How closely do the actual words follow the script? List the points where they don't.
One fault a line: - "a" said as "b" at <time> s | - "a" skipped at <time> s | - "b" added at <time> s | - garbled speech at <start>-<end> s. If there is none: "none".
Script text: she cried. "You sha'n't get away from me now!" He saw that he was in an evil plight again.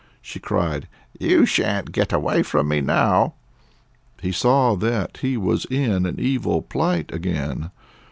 none